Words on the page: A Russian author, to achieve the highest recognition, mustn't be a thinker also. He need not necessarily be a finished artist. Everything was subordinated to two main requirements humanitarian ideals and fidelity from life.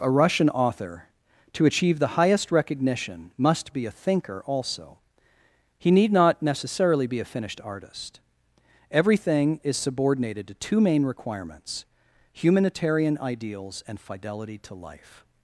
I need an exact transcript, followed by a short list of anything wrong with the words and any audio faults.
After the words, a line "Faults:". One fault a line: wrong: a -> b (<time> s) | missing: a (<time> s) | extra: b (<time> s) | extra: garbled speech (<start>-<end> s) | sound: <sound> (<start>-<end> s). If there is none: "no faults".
A Russian author, to achieve the highest recognition, must be a thinker also. He need not necessarily be a finished artist. Everything is subordinated to two main requirements humanitarian ideals and fidelity to life.
Faults:
wrong: mustn't -> must (3.4 s)
wrong: was -> is (9.6 s)
wrong: from -> to (14.6 s)